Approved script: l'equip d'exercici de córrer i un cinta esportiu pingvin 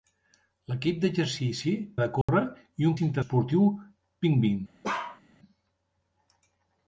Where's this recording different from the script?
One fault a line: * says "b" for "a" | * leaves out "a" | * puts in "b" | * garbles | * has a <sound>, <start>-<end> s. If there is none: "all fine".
* has a dropout, 2.2-2.3 s
* has a bark, 4.8-5.2 s